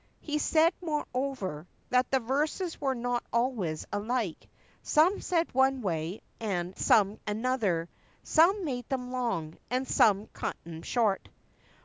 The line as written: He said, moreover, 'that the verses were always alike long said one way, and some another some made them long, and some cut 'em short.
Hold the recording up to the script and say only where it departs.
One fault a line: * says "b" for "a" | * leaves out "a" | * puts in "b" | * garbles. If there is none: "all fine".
* puts in "not"
* says "some" for "long"